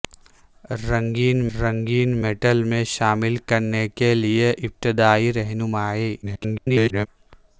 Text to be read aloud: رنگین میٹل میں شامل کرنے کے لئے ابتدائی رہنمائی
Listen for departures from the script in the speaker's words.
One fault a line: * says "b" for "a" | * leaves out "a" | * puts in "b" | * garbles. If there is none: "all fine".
* puts in "رنگین"
* garbles